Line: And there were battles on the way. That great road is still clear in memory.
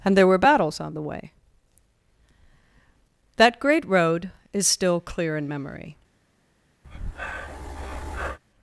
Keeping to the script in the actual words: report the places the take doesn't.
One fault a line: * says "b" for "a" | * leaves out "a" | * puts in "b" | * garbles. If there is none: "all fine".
all fine